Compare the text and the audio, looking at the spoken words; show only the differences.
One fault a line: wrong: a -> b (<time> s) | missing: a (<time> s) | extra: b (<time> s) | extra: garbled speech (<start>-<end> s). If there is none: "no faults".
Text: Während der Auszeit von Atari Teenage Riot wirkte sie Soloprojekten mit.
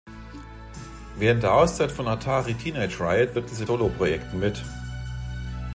no faults